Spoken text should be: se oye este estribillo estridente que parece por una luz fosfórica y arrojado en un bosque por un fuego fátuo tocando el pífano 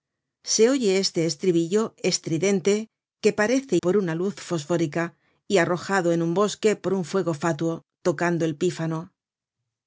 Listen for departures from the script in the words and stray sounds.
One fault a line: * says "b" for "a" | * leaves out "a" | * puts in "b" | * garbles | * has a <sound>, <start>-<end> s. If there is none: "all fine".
all fine